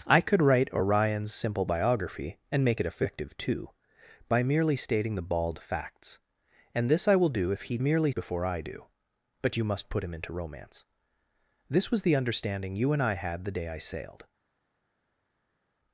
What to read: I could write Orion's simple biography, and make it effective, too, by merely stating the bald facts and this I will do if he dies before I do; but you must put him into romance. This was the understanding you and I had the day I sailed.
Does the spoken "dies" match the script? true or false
false